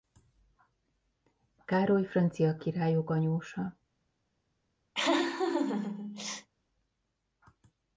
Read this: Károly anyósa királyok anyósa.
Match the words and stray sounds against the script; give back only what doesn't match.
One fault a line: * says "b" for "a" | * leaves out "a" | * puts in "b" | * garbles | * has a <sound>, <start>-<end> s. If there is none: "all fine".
* says "francia" for "anyósa"
* has a laugh, 4.9-6.5 s